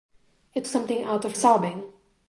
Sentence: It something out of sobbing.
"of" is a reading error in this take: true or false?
false